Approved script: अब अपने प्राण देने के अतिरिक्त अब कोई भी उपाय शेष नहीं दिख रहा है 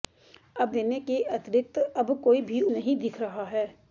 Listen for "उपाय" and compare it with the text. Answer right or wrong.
wrong